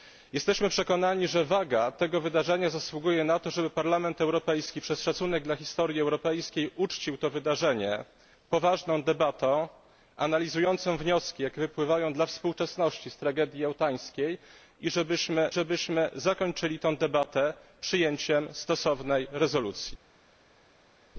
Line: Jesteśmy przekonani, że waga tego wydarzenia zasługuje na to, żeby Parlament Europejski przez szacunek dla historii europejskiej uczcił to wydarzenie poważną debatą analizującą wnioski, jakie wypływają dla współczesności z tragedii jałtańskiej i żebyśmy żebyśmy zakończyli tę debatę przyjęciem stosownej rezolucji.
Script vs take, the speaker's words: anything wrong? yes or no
no